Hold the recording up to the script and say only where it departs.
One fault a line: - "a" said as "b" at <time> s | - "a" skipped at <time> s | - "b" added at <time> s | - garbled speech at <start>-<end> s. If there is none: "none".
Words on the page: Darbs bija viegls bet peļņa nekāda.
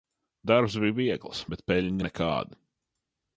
none